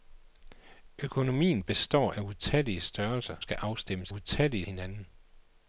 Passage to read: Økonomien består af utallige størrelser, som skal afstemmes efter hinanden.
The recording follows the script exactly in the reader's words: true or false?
false